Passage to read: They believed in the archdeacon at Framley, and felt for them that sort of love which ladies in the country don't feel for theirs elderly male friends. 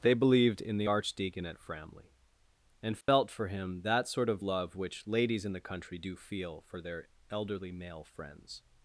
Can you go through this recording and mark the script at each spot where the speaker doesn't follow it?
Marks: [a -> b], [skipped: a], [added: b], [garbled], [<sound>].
They believed in the archdeacon at Framley, and felt [dropout] for [them -> him] that sort of love which ladies in the country [don't -> do] feel for [theirs -> their] elderly male friends.